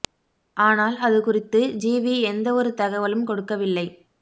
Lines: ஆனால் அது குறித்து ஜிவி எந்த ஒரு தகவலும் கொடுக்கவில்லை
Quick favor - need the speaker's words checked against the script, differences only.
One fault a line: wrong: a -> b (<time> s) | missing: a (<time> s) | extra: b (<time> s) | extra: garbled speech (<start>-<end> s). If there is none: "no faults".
no faults